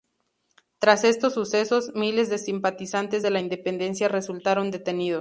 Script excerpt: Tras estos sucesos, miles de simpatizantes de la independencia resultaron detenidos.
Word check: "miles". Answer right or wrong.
right